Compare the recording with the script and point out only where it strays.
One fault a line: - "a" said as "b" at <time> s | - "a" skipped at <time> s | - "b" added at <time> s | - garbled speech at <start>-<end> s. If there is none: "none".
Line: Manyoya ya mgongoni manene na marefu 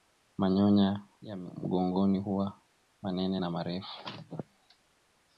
- "huwa" added at 2.2 s